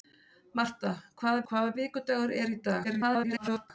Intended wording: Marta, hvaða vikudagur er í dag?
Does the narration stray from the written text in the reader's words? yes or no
yes